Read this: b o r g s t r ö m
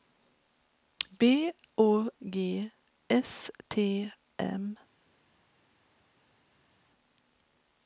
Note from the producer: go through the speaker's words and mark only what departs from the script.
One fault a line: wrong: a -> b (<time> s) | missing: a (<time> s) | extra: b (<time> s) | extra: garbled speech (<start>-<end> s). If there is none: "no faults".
missing: r (2.1 s)
missing: r ö (4.1 s)